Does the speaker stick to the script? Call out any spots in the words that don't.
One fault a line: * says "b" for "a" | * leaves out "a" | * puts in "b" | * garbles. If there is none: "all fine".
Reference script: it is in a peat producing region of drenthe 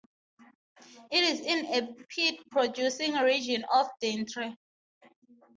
all fine